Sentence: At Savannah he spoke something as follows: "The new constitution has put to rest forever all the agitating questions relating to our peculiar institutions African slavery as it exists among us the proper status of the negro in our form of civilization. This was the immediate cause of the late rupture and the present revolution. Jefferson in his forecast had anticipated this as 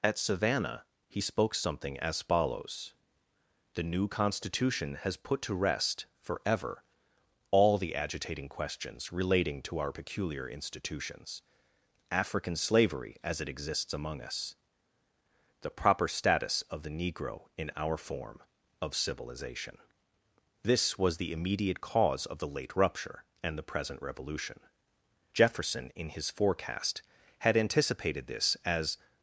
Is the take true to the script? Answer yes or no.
yes